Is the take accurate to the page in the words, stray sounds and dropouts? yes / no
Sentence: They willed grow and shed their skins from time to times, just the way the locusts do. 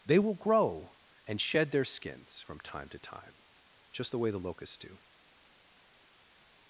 no